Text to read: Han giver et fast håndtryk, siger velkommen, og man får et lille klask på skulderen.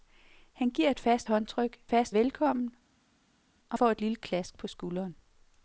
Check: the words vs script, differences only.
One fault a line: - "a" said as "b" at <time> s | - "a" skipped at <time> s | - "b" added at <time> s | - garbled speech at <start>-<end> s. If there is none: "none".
- "siger" said as "fast" at 1.9 s
- "man" skipped at 3.8 s